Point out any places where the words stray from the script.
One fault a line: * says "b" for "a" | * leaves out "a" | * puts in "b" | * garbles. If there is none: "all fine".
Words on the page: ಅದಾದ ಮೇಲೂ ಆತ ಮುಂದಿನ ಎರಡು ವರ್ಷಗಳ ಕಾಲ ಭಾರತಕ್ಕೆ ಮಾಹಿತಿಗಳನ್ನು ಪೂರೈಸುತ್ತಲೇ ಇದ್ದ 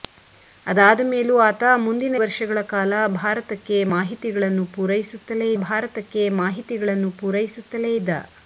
* leaves out "ಎರಡು"
* puts in "ಭಾರತಕ್ಕೆ ಮಾಹಿತಿಗಳನ್ನು ಪೂರೈಸುತ್ತಲೇ"